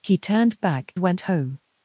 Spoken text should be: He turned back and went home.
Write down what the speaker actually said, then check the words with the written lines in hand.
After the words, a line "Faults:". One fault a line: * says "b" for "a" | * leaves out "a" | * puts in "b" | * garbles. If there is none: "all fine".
He turned back went home.
Faults:
* leaves out "and"